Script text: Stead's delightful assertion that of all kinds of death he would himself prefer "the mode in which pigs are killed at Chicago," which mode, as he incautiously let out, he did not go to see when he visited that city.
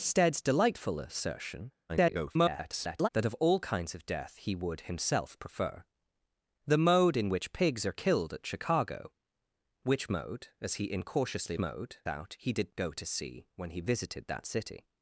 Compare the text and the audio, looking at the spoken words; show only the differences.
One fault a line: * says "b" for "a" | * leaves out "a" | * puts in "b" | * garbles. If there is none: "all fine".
* garbles
* says "mode" for "let"
* leaves out "not"